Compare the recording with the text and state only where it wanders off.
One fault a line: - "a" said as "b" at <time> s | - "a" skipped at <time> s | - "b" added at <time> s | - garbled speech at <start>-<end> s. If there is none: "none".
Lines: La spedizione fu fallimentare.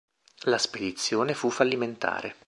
none